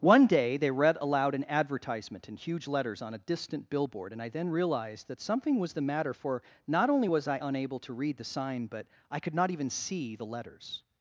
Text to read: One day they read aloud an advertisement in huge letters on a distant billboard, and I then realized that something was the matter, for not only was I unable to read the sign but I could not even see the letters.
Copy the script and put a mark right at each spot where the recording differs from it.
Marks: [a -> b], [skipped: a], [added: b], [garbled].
One day they read aloud an advertisement in huge letters on a distant billboard, and I then realized that something was the matter, for not only was I unable to read the sign but I could not even see the letters.